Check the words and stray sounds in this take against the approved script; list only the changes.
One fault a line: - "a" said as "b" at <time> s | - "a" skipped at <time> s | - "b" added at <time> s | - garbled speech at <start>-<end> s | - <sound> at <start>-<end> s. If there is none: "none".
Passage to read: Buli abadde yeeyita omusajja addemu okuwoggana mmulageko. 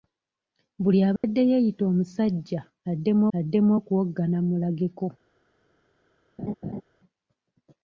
- dropout at 1.2-1.2 s
- "addemu" added at 3.4 s
- laugh at 6.4-6.8 s